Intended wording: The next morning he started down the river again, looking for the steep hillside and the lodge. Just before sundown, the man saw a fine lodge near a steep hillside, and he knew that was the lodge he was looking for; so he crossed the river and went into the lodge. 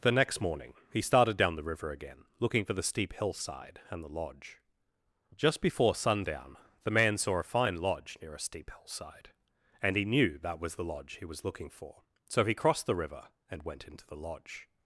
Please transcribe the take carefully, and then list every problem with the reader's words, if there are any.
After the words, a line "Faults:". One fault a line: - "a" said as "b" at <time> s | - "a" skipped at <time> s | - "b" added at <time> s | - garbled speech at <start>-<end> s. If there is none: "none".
The next morning he started down the river again, looking for the steep hillside and the lodge. Just before sundown, the man saw a fine lodge near a steep hillside, and he knew that was the lodge he was looking for; so he crossed the river and went into the lodge.
Faults:
none